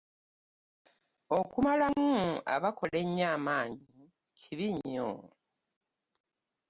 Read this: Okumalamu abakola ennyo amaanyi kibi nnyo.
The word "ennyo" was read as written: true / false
true